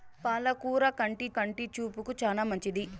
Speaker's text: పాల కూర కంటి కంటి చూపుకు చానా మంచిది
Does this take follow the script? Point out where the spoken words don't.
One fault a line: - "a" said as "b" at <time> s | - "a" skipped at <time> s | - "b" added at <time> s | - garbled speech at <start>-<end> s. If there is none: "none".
none